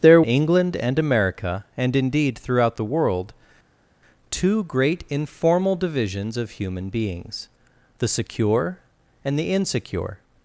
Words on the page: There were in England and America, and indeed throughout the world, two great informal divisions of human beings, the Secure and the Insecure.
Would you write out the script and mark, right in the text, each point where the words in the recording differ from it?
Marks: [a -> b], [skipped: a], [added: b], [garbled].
There [skipped: were in] England and America, and indeed throughout the world, two great informal divisions of human beings, the Secure and the Insecure.